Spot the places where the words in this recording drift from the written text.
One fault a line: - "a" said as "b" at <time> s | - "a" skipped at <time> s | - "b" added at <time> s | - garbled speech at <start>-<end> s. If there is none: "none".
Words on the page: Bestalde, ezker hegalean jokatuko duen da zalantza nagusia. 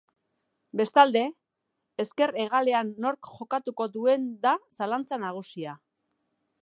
- "nork" added at 3.1 s